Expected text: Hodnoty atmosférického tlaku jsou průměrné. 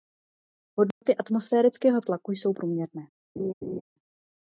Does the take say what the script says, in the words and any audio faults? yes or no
no